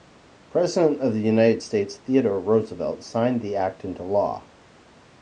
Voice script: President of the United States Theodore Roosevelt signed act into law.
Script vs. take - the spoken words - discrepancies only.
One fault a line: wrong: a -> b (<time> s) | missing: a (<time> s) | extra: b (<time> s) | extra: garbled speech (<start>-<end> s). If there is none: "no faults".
extra: the (3.4 s)